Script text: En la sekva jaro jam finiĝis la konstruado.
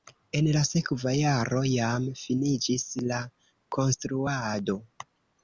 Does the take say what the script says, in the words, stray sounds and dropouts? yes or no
yes